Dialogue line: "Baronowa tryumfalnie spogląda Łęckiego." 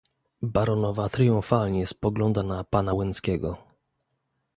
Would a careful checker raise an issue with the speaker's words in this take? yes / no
yes